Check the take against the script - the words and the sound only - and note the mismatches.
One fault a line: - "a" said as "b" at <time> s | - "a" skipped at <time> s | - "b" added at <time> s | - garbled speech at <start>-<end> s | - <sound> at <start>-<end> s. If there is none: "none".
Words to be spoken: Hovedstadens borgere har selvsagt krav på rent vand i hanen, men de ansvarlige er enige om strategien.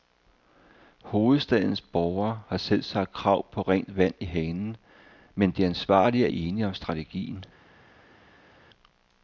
none